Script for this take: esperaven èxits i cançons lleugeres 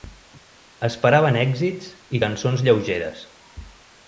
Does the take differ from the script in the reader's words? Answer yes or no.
no